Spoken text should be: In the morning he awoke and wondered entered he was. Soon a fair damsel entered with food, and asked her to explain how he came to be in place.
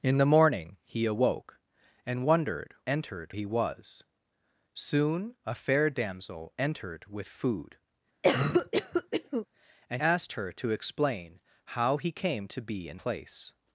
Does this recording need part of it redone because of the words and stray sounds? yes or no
yes